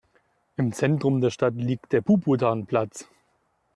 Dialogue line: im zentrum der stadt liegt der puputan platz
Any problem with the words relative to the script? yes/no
no